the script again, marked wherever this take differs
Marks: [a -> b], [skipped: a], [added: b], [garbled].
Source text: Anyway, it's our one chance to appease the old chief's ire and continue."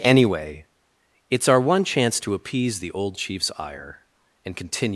Anyway, it's our one chance to appease the old chief's ire and continue."